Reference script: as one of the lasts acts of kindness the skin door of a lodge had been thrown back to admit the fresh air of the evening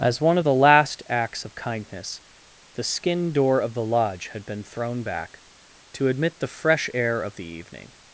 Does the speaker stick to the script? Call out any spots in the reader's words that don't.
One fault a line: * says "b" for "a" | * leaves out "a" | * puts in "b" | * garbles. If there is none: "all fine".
* says "last" for "lasts"
* says "the" for "a"